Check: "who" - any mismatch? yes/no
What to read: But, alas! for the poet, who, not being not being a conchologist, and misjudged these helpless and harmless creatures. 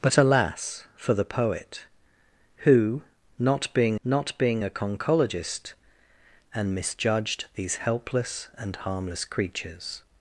no